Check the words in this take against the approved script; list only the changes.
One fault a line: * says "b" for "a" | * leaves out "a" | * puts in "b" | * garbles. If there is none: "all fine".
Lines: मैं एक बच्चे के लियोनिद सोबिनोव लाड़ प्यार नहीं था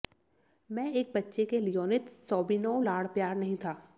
all fine